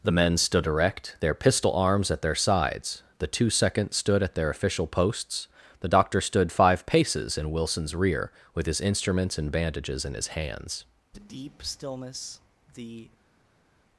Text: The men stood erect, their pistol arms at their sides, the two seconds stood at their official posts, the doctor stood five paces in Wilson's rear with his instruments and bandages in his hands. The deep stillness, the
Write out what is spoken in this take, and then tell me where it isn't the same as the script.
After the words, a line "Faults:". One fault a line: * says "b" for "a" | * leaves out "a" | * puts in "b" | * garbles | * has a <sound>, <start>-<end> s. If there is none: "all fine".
The men stood erect, their pistol arms at their sides, the two seconds stood at their official posts, the doctor stood five paces in Wilson's rear with his instruments and bandages in his hands. The deep stillness, the
Faults:
all fine